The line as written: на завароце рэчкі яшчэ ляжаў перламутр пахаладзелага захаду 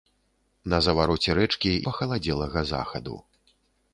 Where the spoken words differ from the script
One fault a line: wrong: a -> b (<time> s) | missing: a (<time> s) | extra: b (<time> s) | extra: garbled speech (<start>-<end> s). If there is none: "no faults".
missing: яшчэ ляжаў перламутр (1.7 s)